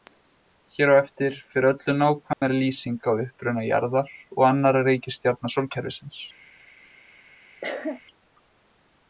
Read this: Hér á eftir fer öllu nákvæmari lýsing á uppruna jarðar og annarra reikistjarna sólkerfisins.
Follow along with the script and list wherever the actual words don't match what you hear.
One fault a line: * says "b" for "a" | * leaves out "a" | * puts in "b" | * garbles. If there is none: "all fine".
all fine